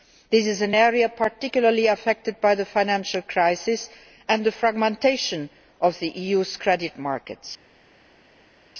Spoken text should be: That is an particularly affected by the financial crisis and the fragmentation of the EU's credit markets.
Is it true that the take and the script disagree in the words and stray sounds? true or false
true